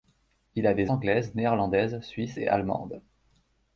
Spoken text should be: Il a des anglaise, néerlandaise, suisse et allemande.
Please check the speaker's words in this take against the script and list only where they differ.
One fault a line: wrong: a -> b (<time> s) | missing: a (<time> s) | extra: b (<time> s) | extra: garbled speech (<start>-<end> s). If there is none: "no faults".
no faults